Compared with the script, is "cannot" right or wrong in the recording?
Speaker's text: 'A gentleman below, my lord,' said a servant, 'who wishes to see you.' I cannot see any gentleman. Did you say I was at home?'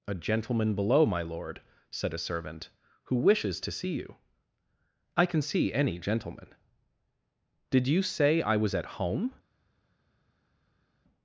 wrong